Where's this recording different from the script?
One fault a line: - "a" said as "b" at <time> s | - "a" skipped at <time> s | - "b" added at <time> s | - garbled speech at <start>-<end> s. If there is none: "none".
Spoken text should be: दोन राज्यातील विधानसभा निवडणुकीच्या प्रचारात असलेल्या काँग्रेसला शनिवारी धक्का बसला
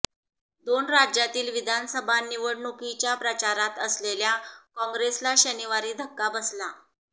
none